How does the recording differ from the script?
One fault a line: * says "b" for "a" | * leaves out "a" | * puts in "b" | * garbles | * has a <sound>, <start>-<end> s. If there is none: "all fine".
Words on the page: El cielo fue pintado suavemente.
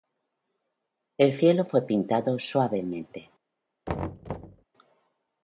* has a thud, 3.9-4.6 s